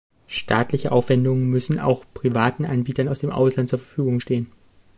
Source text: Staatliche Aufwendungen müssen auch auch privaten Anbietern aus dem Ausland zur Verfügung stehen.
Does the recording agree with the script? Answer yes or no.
no